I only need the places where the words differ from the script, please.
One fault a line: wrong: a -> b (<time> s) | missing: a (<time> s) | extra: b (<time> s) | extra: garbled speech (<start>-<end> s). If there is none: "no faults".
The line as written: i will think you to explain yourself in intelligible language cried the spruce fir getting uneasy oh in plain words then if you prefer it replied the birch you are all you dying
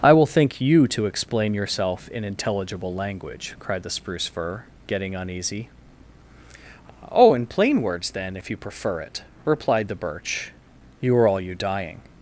no faults